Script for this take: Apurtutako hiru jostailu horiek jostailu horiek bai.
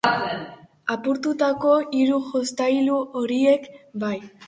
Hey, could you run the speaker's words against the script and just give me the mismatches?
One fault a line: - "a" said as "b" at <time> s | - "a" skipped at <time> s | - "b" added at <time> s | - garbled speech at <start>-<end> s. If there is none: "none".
- "jostailu horiek" skipped at 3.7 s